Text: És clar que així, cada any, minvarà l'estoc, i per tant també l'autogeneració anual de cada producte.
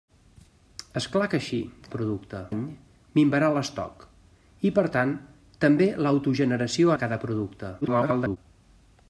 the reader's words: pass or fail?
fail